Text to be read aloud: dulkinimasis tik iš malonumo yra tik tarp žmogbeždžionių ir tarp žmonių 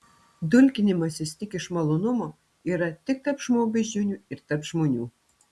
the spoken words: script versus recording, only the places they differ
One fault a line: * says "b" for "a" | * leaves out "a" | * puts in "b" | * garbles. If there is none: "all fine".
all fine